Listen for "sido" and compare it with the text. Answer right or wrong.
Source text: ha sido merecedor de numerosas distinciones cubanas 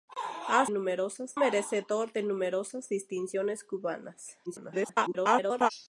wrong